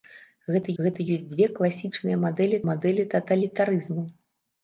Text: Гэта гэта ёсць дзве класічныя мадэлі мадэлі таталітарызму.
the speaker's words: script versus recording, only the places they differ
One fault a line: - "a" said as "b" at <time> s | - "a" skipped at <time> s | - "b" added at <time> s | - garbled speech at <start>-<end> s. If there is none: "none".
none